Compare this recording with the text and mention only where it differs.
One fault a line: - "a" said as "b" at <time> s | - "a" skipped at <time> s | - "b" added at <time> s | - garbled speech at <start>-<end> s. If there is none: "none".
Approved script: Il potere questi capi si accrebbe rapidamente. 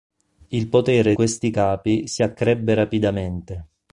none